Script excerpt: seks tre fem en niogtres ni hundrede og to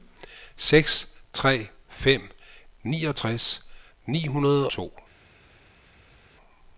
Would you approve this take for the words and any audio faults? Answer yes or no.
no